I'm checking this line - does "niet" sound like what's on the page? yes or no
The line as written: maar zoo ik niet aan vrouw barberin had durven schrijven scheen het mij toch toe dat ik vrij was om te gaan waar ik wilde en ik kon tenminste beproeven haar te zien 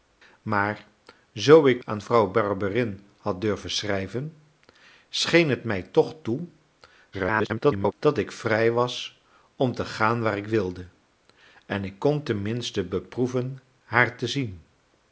no